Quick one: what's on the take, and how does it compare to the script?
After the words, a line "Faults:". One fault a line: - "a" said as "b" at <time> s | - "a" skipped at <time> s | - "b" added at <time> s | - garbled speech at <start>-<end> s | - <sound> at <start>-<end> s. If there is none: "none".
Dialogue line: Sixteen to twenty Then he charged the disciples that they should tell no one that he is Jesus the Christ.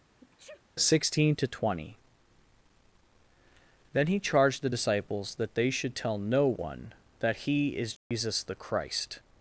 Sixteen to twenty Then he charged the disciples that they should tell no one that he is Jesus the Christ.
Faults:
- sneeze at 0.2-0.6 s
- dropout at 8.0-8.1 s